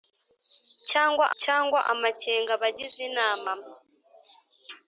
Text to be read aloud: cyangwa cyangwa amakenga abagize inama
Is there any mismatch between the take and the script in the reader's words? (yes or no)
no